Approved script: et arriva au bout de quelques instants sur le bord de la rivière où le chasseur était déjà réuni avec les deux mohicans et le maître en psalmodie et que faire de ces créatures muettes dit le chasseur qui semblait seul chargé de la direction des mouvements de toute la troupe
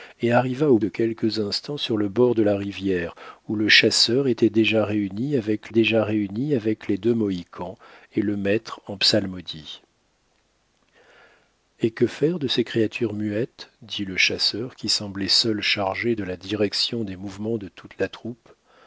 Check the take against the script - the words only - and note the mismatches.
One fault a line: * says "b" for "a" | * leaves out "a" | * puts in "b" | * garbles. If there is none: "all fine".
* leaves out "bout"
* puts in "déjà réuni avec"